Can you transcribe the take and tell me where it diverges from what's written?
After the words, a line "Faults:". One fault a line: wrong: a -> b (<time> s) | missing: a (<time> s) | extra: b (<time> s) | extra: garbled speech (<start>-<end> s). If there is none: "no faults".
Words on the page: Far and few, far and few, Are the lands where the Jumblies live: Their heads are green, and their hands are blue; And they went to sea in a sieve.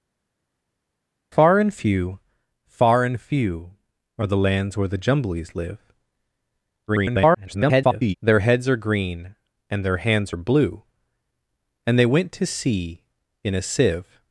Far and few, far and few, Are the lands where the Jumblies live: [garbled] Their heads are green, and their hands are blue; And they went to sea in a sieve.
Faults:
extra: garbled speech (6.9-8.2 s)